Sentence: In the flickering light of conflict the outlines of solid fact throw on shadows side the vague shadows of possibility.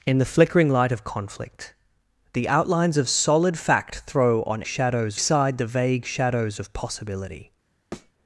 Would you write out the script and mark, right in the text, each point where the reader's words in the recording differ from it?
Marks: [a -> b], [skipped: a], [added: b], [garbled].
In the flickering light of conflict the outlines of solid fact throw on shadows side the vague shadows of possibility.